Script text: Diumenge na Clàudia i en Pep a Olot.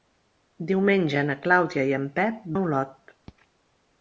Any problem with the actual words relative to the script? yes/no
no